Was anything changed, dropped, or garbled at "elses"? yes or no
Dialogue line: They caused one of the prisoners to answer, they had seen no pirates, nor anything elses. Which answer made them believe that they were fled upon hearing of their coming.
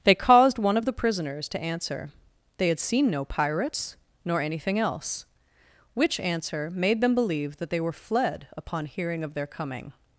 yes